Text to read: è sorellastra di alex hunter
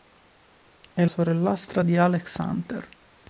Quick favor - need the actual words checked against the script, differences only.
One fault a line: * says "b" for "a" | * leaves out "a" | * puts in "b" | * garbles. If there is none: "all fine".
all fine